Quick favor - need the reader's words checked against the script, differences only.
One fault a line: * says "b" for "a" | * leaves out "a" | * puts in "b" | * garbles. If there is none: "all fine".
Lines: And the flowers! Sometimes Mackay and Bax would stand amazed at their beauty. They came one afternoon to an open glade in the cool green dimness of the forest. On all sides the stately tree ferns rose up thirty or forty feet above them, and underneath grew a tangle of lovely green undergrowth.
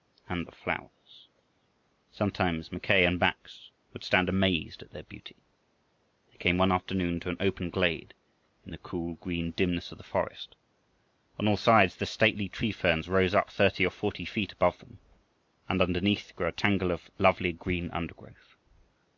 all fine